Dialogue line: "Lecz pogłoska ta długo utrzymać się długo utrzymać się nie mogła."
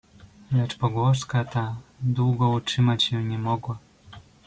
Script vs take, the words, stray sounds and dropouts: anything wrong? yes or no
yes